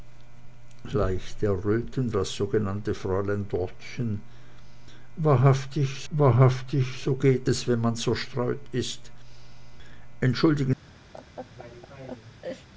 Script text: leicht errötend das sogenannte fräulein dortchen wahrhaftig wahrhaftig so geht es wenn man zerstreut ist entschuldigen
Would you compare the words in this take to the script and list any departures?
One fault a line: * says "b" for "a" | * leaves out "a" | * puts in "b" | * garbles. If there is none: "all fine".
all fine